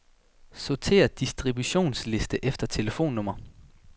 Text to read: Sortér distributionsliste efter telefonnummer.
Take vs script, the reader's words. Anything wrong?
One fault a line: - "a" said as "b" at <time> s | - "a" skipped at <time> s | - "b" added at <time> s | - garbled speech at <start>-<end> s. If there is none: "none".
none